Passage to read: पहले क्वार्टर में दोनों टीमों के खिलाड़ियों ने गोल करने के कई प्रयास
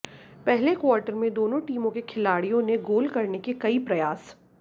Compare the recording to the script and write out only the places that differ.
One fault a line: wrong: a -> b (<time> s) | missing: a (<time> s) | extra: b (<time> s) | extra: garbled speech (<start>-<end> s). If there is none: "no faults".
no faults